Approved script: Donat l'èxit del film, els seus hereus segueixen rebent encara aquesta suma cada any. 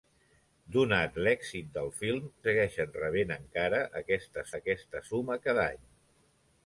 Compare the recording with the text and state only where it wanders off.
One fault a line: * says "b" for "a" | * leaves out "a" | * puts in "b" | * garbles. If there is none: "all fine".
* leaves out "els seus hereus"
* puts in "aquesta"